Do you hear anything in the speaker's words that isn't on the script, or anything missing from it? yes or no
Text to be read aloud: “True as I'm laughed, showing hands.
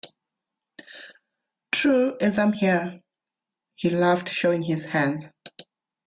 yes